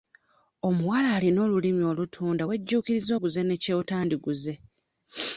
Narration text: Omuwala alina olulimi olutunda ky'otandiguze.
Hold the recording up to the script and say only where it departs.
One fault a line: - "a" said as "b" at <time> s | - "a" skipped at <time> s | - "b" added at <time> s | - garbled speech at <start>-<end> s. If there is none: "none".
- "wejjuukiriza oguze ne" added at 2.5 s